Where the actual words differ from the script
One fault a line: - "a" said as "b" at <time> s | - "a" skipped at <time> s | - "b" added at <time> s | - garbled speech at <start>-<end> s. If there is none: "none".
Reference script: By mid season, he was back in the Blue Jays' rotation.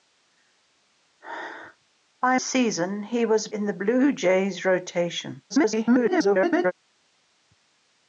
- "mid" skipped at 2.4 s
- "back" skipped at 3.5 s
- garbled speech at 5.5-6.7 s